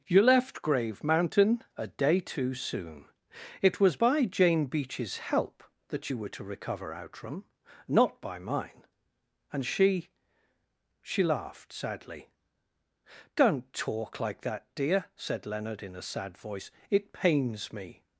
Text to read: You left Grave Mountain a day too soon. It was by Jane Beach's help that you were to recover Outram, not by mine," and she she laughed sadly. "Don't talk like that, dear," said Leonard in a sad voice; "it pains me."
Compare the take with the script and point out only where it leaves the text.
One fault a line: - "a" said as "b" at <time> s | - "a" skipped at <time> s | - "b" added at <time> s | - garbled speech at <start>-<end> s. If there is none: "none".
none